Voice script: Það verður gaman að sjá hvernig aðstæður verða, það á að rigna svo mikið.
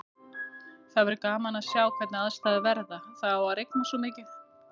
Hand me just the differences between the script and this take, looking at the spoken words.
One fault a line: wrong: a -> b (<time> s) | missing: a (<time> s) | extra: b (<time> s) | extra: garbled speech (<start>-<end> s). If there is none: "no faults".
no faults